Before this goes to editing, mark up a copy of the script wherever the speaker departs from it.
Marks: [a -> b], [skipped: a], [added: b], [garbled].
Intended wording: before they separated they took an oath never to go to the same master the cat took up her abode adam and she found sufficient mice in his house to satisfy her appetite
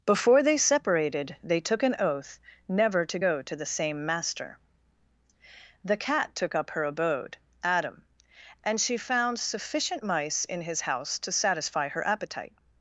before they separated they took an oath never to go to the same master the cat took up her abode adam and she found sufficient mice in his house to satisfy her appetite